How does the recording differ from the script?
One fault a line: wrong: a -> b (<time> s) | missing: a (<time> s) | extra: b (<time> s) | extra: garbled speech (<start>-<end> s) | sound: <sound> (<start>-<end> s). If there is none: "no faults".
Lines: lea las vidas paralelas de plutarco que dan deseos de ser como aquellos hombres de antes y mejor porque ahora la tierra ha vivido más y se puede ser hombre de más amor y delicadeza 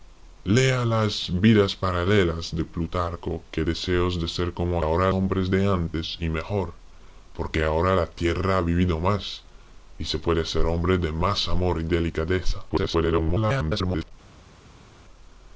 missing: dan (3.6 s)
wrong: aquellos -> ahora (4.8 s)
extra: garbled speech (12.7-14.1 s)